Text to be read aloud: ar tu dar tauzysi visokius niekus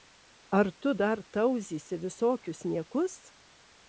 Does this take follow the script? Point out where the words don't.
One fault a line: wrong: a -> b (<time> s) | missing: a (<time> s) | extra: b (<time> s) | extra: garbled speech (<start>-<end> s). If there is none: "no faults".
no faults